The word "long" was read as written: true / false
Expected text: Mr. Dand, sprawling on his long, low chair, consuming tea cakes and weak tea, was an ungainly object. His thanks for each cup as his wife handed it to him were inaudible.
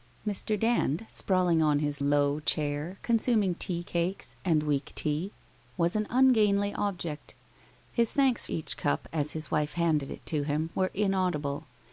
false